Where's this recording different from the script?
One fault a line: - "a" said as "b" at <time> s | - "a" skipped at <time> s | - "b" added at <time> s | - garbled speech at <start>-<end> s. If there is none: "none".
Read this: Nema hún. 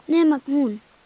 none